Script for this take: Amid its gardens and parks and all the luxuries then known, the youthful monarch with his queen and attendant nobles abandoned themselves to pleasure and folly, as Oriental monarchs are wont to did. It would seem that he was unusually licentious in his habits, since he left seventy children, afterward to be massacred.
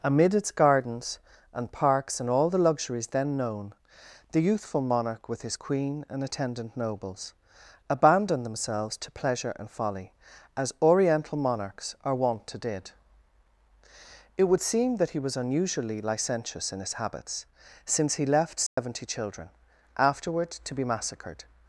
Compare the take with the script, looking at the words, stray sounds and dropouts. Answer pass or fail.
fail